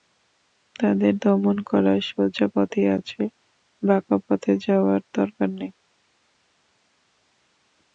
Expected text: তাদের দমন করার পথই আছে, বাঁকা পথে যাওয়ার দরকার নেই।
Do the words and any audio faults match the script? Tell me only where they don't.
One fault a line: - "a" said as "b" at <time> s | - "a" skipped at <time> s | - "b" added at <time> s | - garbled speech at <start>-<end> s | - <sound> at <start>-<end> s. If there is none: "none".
- "সোজা" added at 2.1 s